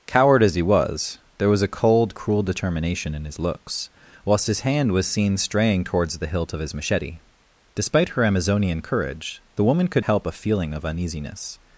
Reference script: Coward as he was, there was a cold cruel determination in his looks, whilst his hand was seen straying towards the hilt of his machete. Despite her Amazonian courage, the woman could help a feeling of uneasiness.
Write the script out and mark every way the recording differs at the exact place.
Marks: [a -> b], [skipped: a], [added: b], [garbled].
Coward as he was, there was a cold cruel determination in his looks, whilst his hand was seen straying towards the hilt of his machete. Despite her Amazonian courage, the woman could help a feeling of uneasiness.